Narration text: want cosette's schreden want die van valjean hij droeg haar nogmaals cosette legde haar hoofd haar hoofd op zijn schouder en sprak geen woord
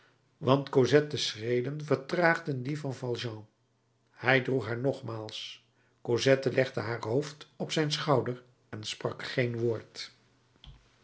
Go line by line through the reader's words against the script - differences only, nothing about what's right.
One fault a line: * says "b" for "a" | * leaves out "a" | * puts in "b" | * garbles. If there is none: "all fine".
* says "vertraagden" for "want"
* leaves out "haar hoofd"